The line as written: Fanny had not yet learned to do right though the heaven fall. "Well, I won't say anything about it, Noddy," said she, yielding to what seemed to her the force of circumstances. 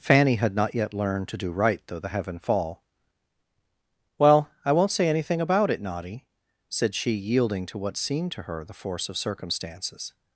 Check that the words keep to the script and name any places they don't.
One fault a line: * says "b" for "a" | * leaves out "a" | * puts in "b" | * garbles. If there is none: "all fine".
all fine